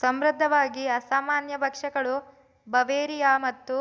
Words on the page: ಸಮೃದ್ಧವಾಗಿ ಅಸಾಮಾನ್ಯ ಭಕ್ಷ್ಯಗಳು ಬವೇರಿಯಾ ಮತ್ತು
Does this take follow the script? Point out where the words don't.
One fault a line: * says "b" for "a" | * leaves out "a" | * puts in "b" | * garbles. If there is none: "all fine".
all fine